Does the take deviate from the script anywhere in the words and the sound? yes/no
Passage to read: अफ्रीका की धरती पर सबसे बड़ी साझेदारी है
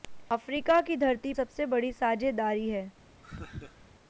yes